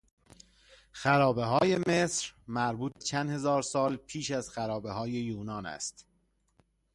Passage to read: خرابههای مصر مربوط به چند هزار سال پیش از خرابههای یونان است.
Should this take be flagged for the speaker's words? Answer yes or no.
yes